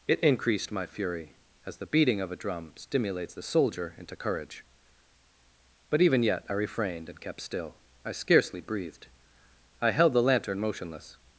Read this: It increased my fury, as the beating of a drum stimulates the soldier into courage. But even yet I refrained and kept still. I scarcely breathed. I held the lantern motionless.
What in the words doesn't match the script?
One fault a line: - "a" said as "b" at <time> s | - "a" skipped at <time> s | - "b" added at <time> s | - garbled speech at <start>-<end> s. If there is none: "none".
none